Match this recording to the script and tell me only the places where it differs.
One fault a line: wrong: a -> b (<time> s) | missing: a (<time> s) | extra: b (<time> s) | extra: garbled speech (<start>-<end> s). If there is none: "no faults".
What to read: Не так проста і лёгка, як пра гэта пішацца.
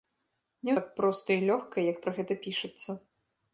no faults